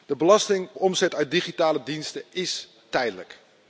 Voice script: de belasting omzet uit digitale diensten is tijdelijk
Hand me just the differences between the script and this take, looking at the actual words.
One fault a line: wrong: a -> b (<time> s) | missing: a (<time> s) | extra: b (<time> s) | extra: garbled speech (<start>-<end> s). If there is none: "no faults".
no faults